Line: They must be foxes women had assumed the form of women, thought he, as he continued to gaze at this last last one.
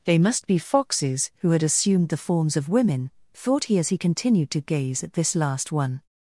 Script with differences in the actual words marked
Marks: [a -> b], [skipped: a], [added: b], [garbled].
They must be foxes [women -> who] had assumed the [form -> forms] of women, thought he, as he continued to gaze at this last [skipped: last] one.